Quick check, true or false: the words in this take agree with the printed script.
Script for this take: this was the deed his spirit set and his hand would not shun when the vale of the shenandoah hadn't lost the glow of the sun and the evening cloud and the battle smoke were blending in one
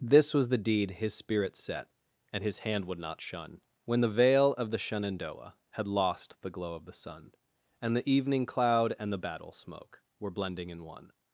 false